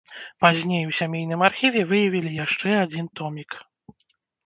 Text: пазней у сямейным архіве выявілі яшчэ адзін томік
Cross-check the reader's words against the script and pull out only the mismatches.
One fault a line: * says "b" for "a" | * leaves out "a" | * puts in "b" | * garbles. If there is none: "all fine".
all fine